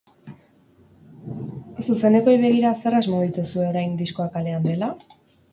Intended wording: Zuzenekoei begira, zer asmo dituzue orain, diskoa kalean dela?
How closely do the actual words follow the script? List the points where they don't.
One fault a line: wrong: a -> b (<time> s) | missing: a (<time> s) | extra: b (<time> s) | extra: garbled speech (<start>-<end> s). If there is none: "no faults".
no faults